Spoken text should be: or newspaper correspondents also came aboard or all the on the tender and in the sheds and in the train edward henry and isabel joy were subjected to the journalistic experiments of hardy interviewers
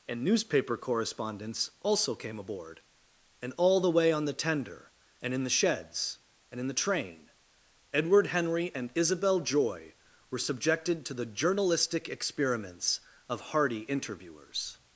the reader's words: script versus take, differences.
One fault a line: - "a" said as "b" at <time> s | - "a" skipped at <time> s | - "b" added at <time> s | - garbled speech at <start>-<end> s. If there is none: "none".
- "or" said as "and" at 0.1 s
- "or" said as "and" at 3.4 s
- "way" added at 3.9 s